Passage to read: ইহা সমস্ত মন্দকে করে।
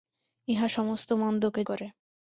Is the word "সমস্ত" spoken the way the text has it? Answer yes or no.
yes